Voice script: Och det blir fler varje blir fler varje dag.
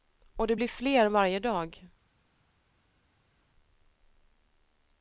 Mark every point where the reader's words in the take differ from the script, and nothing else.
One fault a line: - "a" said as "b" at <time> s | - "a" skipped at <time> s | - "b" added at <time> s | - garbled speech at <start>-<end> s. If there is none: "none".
- "blir fler varje" skipped at 1.4 s